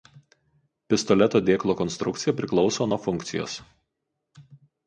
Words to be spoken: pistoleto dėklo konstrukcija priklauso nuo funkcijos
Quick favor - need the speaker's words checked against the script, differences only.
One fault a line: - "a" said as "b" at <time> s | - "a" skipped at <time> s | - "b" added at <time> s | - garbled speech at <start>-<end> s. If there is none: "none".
none